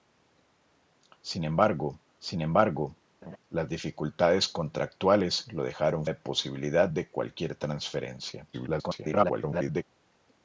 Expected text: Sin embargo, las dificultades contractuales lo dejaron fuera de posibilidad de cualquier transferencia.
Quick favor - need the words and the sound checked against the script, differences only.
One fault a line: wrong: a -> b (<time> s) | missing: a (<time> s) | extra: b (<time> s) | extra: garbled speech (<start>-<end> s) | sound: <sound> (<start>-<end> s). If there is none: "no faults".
extra: sin embargo (2.2 s)
sound: laugh (3.2-3.4 s)
missing: fuera (6.1 s)
extra: garbled speech (8.5-9.8 s)